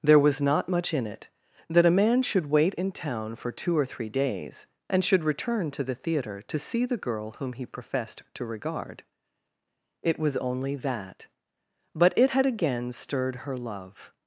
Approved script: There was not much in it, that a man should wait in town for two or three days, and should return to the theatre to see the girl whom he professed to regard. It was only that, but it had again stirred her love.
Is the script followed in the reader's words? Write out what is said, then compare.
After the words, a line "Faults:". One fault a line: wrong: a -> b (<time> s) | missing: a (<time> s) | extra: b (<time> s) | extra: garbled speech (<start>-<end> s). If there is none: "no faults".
There was not much in it, that a man should wait in town for two or three days, and should return to the theatre to see the girl whom he professed to regard. It was only that, but it had again stirred her love.
Faults:
no faults